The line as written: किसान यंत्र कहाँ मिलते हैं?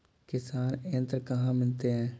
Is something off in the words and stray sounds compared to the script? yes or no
no